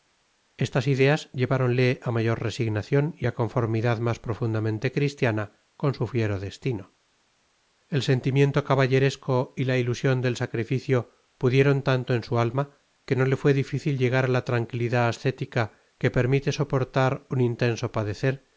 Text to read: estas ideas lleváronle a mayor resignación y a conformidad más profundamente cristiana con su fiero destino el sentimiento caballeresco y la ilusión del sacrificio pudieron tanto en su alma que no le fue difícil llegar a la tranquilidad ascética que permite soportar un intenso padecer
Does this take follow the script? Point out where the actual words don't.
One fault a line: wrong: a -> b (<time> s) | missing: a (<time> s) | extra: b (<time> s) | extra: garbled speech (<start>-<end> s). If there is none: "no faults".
no faults